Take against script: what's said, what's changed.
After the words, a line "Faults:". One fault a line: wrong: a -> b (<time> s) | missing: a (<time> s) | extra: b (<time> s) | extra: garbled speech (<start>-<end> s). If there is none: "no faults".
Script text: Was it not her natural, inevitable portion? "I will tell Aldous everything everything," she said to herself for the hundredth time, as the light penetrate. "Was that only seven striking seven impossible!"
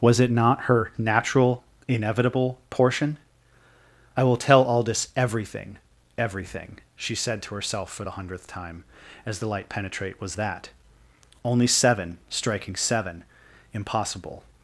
Was it not her natural, inevitable portion? "I will tell Aldous everything everything," she said to herself for the hundredth time, as the light penetrate. "Was that only seven striking seven impossible!"
Faults:
no faults